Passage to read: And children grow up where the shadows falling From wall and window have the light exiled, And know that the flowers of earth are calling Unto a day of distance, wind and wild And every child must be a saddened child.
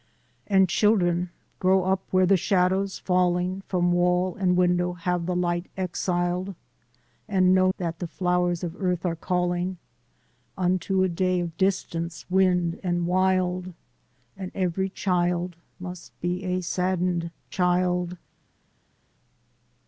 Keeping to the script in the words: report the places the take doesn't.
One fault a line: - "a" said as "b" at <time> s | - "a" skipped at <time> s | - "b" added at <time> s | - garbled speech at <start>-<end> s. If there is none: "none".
none